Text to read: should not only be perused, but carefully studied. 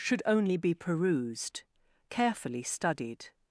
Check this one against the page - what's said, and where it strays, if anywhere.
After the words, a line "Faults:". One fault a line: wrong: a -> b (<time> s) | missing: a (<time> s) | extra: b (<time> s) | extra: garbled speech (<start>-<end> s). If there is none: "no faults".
should only be perused, carefully studied.
Faults:
missing: not (0.2 s)
missing: but (1.6 s)